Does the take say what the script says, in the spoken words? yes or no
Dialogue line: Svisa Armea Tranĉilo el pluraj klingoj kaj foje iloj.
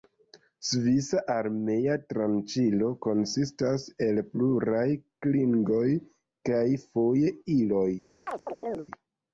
no